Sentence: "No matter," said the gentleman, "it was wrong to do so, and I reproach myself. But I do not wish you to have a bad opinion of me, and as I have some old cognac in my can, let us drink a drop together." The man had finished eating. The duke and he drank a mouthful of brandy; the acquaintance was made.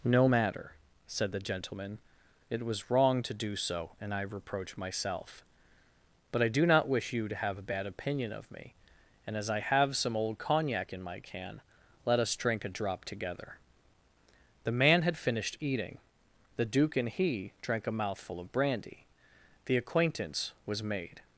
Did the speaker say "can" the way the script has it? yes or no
yes